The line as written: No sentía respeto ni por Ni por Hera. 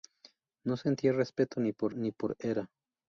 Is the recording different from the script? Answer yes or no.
no